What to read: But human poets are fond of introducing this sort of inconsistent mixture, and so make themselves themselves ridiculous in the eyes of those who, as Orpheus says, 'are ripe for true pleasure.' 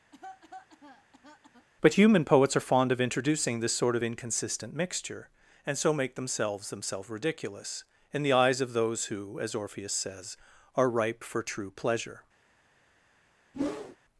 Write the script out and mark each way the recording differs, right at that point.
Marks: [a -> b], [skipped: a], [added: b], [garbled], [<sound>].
[cough] But human poets are fond of introducing this sort of inconsistent mixture, and so make themselves themselves ridiculous in the eyes of those who, as Orpheus says, 'are ripe for true pleasure.' [whoosh]